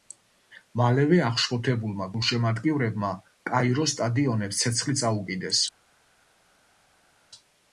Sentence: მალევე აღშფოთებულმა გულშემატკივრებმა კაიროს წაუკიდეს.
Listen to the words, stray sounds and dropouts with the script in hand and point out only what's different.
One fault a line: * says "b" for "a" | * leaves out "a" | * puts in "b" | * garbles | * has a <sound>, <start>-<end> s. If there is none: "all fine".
* puts in "სტადიონებს ცეცხლი"